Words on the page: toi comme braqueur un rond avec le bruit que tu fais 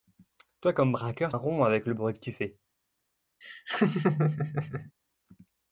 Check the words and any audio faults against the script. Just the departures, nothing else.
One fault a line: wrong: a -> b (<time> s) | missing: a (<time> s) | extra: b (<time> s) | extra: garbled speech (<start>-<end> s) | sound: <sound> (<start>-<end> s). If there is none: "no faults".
sound: laugh (3.4-4.9 s)